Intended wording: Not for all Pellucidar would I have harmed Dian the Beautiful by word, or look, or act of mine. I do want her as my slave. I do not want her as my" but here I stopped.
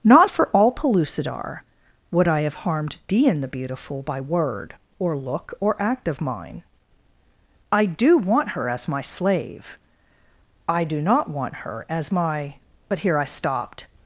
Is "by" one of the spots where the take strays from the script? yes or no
no